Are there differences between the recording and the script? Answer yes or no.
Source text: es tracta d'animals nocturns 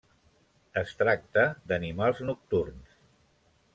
no